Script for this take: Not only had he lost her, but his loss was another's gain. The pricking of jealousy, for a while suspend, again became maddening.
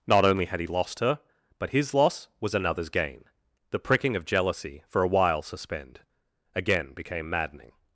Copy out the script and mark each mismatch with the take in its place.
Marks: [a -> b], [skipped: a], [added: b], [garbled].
Not only had he lost her, but his loss was another's gain. The pricking of jealousy, for a while suspend, again became maddening.